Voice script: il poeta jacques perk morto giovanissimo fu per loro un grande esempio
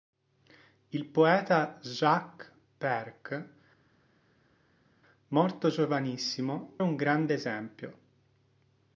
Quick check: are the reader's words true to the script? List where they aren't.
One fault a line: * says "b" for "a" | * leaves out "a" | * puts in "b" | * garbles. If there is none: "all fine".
* leaves out "fu per loro"